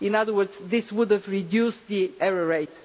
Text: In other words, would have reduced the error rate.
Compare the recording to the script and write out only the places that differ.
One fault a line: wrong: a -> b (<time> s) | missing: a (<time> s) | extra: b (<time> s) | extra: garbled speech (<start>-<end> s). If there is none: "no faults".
extra: this (0.7 s)